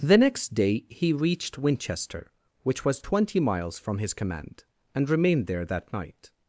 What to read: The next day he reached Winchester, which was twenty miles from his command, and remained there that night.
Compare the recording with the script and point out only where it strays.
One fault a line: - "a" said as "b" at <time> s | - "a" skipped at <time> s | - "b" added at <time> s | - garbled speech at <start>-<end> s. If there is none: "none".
none